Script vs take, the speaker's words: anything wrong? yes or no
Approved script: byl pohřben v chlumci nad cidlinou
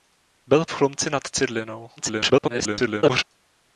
yes